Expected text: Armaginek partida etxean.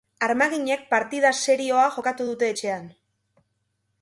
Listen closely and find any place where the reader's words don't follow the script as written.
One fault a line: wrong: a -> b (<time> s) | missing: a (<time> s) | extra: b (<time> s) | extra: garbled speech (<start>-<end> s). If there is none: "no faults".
extra: serioa jokatu dute (1.4 s)